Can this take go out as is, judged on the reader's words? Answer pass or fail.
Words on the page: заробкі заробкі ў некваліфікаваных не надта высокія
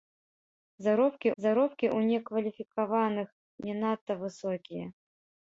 pass